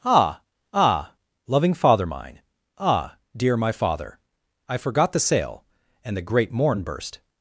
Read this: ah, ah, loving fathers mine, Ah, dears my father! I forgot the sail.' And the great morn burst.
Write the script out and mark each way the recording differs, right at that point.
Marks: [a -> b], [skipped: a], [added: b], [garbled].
ah, ah, loving [fathers -> father] mine, Ah, [dears -> dear] my father! I forgot the sail.' And the great morn burst.